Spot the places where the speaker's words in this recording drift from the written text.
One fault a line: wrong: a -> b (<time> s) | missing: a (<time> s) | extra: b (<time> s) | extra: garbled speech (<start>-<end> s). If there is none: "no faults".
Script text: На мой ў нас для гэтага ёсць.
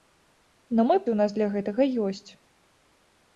no faults